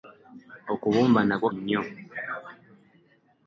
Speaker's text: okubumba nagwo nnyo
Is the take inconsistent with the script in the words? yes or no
no